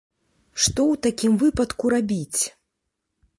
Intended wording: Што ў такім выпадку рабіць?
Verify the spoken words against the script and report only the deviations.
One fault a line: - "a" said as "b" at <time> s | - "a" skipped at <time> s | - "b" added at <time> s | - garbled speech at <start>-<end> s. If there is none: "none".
none